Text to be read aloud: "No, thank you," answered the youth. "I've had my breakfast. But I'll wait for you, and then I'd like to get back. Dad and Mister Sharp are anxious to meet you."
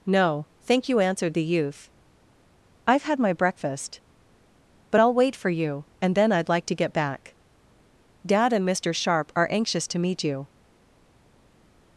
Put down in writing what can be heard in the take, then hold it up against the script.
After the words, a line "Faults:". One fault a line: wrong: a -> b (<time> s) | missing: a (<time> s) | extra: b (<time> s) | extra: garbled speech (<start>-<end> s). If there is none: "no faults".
"No, thank you," answered the youth. "I've had my breakfast. But I'll wait for you, and then I'd like to get back. Dad and Mister Sharp are anxious to meet you."
Faults:
no faults